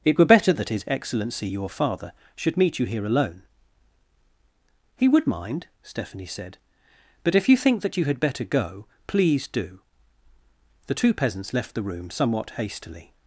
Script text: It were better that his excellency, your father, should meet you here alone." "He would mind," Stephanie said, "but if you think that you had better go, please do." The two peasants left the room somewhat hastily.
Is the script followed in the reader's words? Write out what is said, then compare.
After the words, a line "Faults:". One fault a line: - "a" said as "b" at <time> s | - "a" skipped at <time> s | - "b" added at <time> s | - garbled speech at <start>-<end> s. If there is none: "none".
It were better that his excellency, your father, should meet you here alone." "He would mind," Stephanie said, "but if you think that you had better go, please do." The two peasants left the room somewhat hastily.
Faults:
none